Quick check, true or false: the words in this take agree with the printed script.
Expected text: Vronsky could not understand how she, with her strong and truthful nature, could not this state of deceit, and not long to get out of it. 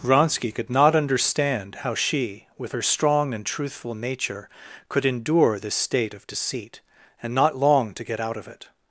false